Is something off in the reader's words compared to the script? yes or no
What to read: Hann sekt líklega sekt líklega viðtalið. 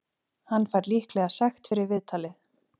yes